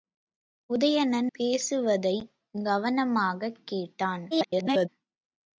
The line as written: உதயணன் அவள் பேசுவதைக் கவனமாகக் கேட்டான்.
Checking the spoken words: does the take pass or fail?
fail